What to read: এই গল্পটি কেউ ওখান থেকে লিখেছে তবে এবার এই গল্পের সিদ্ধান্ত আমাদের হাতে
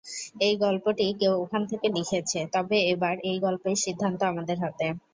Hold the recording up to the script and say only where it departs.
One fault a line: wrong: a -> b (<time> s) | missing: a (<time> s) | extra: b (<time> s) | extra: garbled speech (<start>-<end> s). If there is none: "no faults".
no faults